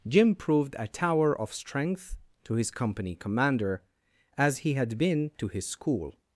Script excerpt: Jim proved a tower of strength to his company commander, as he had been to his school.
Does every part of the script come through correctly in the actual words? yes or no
yes